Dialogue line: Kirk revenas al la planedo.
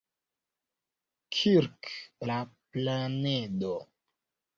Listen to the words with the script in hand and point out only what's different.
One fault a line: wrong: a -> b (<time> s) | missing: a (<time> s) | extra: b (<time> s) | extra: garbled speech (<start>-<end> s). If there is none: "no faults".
missing: revenas al (1.9 s)